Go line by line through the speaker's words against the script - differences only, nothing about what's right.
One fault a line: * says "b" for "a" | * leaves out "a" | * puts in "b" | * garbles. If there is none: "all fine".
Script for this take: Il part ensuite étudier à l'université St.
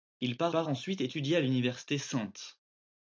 * puts in "part"